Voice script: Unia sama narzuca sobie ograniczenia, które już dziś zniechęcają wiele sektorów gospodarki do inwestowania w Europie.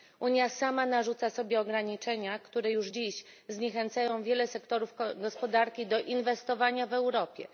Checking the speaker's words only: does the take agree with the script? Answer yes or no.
yes